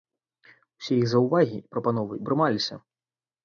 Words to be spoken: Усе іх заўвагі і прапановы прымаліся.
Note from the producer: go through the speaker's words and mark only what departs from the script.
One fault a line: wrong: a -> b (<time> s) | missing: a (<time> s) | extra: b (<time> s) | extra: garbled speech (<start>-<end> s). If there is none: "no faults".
no faults